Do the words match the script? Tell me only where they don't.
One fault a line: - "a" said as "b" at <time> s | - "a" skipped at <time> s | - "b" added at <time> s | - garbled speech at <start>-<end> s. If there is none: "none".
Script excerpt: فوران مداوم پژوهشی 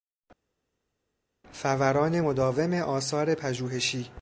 - "آثار" added at 2.7 s